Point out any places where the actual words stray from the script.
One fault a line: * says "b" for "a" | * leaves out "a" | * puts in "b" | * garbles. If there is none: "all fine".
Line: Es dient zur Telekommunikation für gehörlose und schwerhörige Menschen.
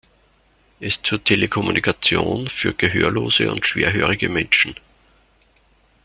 * leaves out "dient"